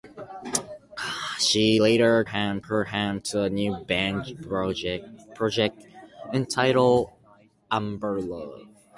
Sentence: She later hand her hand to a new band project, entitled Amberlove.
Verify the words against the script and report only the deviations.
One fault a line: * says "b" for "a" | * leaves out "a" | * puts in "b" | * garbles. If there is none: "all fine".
all fine